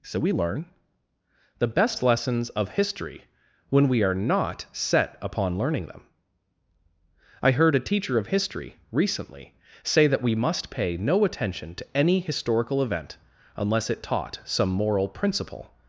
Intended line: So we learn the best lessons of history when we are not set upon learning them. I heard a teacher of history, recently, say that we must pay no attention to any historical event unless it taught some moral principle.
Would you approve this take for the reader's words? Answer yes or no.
yes